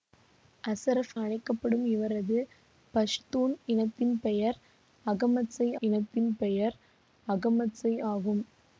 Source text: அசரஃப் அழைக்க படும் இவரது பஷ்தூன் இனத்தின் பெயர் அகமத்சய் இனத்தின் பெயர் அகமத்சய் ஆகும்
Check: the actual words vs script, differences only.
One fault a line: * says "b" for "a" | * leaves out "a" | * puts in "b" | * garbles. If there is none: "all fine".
all fine